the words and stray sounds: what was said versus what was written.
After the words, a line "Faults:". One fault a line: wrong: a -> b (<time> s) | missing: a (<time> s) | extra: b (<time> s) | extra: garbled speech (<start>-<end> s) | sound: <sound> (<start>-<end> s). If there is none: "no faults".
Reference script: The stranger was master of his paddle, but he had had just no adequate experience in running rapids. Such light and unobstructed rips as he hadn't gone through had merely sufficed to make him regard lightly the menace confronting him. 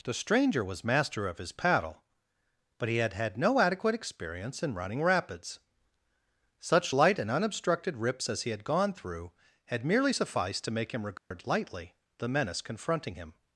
The stranger was master of his paddle, but he had had no adequate experience in running rapids. Such light and unobstructed rips as he had gone through had merely sufficed to make him regard lightly the menace confronting him.
Faults:
missing: just (3.4 s)
wrong: hadn't -> had (8.5 s)
sound: dropout (11.2-11.3 s)